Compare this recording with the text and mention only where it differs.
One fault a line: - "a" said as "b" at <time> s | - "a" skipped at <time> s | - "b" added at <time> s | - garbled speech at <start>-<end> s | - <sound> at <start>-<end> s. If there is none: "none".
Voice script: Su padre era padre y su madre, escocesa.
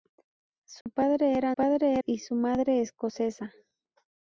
- dropout at 0.8-0.9 s